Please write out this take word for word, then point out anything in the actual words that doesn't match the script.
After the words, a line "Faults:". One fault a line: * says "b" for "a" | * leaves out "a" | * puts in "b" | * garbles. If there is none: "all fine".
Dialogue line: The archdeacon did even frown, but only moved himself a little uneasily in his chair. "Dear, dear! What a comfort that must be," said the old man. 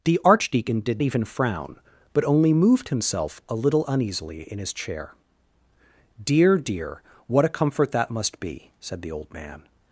The archdeacon did even frown, but only moved himself a little uneasily in his chair. "Dear, dear! What a comfort that must be," said the old man.
Faults:
all fine